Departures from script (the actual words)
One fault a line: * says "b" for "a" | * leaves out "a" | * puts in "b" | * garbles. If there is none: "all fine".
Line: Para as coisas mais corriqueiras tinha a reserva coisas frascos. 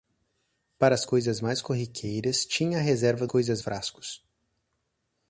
all fine